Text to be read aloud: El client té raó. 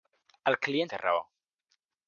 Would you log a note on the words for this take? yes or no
no